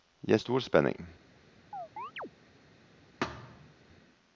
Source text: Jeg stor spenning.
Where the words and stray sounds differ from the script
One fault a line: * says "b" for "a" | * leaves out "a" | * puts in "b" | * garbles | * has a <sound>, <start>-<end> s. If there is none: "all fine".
* has a chirp, 1.7-2.3 s
* has a thud, 3.2-3.7 s